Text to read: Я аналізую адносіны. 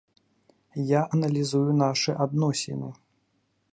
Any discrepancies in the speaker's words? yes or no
yes